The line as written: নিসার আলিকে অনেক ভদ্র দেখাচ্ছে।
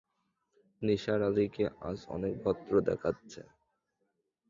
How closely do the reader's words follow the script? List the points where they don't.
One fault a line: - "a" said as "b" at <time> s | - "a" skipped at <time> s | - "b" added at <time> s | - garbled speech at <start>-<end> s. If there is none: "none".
- "আজ" added at 1.9 s